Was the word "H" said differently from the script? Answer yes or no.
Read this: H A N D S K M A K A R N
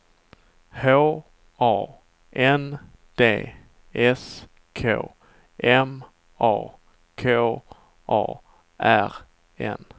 no